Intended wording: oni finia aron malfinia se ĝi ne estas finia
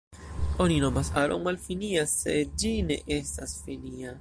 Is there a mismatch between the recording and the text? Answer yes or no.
yes